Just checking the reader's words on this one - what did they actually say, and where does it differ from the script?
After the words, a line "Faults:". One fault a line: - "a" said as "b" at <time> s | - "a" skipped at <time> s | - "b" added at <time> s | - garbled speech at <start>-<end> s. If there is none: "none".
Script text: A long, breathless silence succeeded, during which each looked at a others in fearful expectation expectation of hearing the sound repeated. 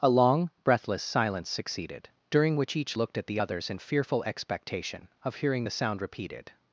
A long, breathless silence succeeded, during which each looked at the others in fearful expectation of hearing the sound repeated.
Faults:
- "a" said as "the" at 3.3 s
- "expectation" skipped at 5.1 s